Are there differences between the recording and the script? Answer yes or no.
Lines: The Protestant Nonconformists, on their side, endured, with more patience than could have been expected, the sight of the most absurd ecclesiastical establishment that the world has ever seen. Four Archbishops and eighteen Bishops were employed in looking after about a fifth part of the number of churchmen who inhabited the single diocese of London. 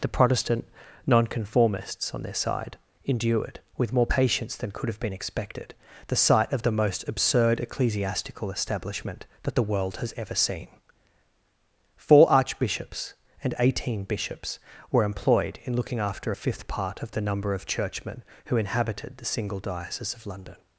yes